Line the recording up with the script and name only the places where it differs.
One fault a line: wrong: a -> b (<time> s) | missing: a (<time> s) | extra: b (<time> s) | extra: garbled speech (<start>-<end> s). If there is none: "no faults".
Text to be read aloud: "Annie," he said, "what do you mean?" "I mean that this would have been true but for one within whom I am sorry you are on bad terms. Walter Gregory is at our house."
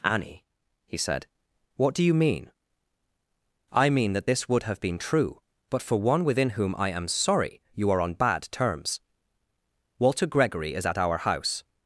no faults